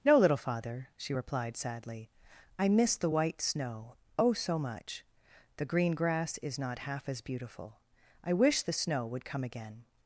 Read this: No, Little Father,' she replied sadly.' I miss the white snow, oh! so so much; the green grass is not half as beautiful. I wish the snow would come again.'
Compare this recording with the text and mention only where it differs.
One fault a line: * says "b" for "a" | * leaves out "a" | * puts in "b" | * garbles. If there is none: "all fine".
* leaves out "so"